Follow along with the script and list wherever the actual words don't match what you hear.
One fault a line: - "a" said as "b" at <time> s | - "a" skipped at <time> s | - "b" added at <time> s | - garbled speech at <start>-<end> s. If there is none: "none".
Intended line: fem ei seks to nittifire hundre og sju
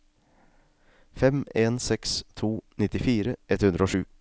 - "ei" said as "en" at 1.6 s
- "ett" added at 3.5 s